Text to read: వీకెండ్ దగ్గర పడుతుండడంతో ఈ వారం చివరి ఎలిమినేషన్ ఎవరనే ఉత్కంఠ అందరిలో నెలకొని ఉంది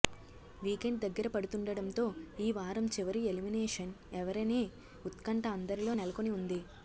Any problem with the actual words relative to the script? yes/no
no